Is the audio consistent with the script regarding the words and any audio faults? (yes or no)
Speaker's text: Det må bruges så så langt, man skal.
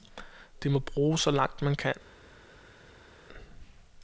no